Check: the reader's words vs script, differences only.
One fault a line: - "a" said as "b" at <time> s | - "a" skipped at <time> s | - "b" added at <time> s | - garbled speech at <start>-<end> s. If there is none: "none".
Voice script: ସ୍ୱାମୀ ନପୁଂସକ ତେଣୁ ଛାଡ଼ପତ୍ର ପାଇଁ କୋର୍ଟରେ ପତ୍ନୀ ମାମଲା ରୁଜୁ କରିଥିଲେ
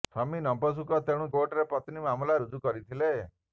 - "ଛାଡ଼ପତ୍ର ପାଇଁ" skipped at 1.3 s